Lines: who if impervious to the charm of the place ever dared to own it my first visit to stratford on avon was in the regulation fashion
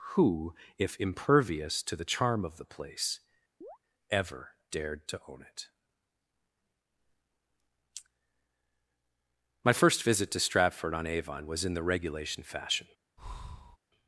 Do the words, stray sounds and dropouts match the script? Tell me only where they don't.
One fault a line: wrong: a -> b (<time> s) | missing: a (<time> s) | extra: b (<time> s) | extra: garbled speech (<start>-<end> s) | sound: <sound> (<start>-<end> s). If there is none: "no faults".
sound: chirp (3.6-3.8 s)
sound: breath (13.2-13.8 s)